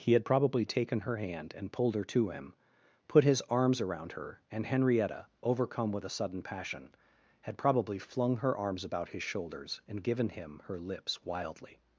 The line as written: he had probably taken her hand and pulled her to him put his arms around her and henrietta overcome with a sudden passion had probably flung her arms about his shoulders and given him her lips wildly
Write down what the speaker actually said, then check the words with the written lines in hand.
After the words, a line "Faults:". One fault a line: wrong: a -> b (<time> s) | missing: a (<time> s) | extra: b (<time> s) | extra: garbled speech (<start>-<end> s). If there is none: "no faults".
he had probably taken her hand and pulled her to him put his arms around her and henrietta overcome with a sudden passion had probably flung her arms about his shoulders and given him her lips wildly
Faults:
no faults